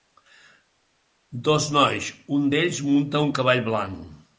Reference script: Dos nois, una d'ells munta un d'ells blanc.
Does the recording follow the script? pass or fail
fail